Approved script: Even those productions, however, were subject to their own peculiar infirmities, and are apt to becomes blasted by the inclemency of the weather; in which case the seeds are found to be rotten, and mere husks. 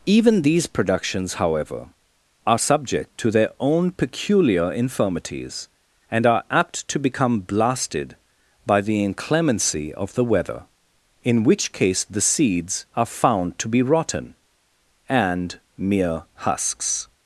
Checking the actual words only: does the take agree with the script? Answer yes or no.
no